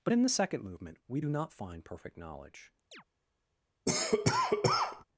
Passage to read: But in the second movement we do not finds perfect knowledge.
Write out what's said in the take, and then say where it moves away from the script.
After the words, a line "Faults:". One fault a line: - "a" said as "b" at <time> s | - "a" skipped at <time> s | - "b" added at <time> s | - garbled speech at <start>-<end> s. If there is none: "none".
But in the second movement we do not find perfect knowledge.
Faults:
- "finds" said as "find" at 1.5 s